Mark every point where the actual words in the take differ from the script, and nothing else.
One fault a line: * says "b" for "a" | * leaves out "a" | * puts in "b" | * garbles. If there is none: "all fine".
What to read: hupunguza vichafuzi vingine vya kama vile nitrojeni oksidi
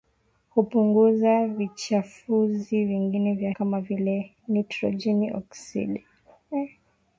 all fine